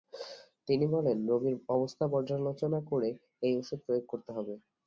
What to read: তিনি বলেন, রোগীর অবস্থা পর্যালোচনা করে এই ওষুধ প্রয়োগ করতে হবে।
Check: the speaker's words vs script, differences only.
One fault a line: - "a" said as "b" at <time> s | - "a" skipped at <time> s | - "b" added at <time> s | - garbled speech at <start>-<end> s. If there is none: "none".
none